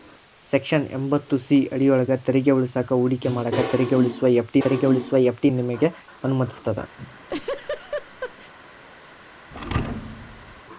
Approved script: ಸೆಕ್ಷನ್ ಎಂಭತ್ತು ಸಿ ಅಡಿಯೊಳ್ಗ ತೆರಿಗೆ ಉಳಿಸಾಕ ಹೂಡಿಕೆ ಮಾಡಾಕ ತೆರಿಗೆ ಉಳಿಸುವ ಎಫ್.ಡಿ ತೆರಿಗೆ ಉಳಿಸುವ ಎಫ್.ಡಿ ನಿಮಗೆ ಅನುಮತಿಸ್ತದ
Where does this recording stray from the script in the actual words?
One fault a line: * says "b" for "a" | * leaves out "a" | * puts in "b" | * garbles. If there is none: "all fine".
all fine